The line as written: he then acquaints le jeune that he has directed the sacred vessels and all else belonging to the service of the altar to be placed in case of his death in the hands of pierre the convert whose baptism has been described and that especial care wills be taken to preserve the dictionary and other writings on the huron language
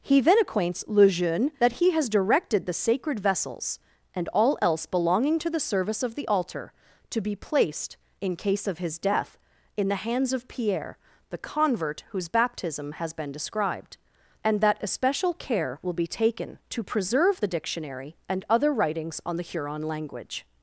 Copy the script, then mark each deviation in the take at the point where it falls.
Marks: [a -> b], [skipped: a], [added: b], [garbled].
he then acquaints le jeune that he has directed the sacred vessels and all else belonging to the service of the altar to be placed in case of his death in the hands of pierre the convert whose baptism has been described and that especial care [wills -> will] be taken to preserve the dictionary and other writings on the huron language